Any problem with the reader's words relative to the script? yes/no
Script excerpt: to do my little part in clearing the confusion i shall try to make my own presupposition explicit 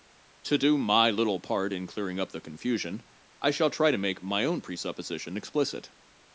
yes